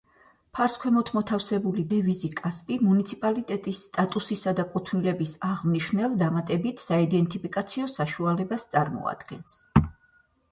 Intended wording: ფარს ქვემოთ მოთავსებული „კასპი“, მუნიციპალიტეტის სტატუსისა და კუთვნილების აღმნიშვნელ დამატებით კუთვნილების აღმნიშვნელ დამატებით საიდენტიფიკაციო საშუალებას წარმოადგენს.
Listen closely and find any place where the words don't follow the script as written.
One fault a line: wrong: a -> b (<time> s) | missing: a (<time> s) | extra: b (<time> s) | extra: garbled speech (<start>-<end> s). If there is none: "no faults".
extra: დევიზი (1.9 s)
missing: კუთვნილების აღმნიშვნელ დამატებით (6.8 s)